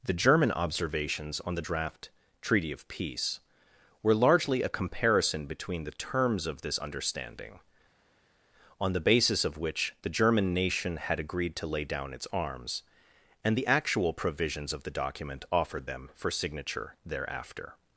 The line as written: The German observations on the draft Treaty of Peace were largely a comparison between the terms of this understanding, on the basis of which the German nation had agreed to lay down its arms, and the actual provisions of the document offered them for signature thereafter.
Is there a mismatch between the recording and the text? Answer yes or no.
no